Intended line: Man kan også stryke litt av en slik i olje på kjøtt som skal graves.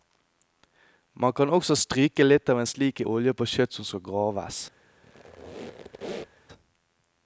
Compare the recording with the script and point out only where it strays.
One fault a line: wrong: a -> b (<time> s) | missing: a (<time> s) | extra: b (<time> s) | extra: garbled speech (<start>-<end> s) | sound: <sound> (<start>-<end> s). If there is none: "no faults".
sound: squeak (5.0-6.5 s)